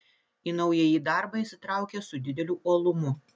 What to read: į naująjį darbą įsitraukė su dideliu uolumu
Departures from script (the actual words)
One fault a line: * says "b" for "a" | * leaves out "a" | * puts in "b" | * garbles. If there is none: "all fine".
all fine